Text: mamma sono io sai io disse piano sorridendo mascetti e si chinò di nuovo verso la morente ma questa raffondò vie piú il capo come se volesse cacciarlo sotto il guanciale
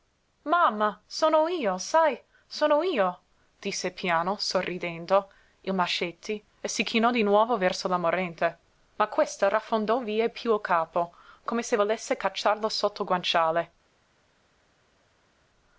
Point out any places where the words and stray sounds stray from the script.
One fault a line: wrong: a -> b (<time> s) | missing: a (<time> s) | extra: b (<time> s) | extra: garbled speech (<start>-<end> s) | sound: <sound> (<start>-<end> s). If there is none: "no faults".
extra: sono (2.5 s)
extra: il (5.6 s)